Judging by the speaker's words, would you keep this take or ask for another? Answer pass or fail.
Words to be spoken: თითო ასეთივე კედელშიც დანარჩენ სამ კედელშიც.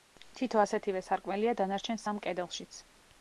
fail